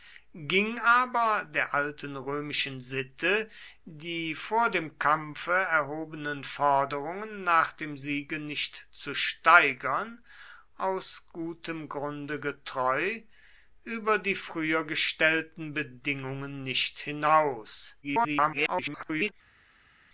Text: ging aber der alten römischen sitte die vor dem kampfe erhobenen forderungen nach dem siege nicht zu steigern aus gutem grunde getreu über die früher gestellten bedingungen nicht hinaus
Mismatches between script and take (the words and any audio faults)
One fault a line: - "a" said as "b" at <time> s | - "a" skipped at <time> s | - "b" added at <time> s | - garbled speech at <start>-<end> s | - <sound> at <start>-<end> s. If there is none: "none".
- garbled speech at 18.0-19.3 s